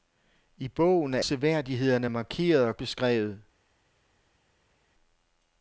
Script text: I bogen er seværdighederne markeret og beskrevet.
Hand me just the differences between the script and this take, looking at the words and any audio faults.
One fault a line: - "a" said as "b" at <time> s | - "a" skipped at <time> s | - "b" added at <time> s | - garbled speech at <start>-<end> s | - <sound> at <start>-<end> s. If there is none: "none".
none